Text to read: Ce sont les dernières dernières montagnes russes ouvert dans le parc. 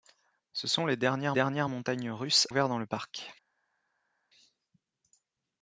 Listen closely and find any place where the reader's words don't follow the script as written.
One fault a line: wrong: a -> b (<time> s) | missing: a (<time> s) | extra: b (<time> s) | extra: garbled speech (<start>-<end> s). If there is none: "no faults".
no faults